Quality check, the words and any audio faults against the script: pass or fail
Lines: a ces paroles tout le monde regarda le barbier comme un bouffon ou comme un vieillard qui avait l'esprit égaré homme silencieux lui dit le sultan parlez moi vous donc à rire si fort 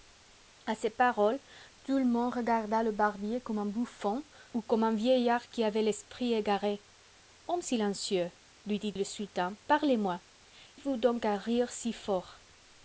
pass